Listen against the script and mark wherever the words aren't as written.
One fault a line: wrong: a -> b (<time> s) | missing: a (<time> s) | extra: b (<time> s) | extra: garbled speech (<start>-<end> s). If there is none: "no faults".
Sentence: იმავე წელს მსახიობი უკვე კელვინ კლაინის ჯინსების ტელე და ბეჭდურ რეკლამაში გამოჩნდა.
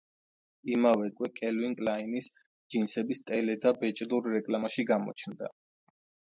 missing: წელს მსახიობი (1.1 s)